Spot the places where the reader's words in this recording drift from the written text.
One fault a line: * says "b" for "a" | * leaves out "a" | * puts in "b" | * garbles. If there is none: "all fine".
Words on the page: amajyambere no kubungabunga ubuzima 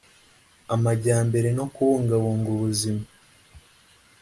all fine